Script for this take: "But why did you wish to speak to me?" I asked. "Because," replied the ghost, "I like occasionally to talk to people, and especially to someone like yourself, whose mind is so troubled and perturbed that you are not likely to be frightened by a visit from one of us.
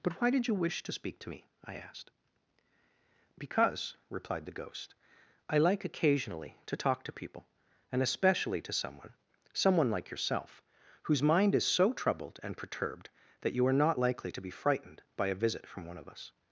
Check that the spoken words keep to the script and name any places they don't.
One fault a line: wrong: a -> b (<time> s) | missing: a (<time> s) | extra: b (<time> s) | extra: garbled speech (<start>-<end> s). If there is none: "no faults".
extra: someone (9.5 s)